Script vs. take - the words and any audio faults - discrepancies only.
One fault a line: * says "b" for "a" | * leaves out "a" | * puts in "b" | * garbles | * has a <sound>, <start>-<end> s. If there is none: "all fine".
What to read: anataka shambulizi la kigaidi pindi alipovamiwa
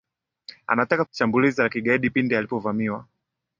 all fine